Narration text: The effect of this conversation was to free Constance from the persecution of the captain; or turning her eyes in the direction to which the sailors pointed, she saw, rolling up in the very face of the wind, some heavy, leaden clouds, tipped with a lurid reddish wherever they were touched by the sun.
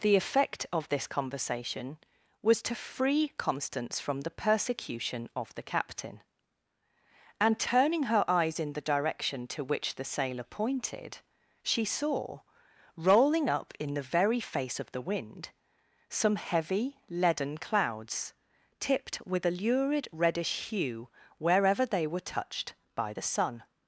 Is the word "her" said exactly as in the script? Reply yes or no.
yes